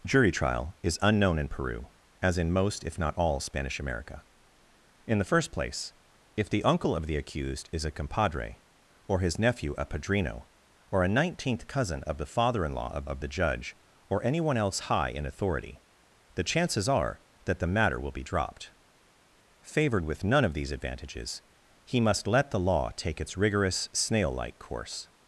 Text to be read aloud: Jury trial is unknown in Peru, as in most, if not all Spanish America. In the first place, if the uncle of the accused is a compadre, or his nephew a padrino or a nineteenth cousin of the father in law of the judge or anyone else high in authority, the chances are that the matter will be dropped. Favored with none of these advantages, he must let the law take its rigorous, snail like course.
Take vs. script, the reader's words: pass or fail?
fail